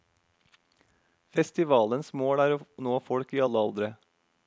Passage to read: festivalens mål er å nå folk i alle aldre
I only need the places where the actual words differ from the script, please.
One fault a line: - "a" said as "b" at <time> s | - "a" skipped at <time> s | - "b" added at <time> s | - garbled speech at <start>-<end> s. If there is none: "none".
none